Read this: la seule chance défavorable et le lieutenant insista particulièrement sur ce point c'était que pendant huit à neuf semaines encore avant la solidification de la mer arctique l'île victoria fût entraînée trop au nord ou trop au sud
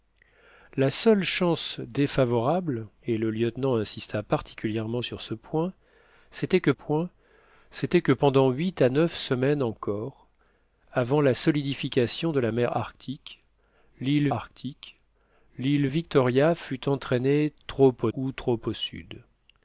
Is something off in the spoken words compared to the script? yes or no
yes